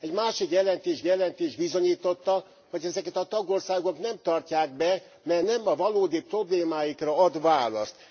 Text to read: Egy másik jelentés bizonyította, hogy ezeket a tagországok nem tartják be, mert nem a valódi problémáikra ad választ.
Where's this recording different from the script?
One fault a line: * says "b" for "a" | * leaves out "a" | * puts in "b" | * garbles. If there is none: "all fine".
* puts in "jelentés"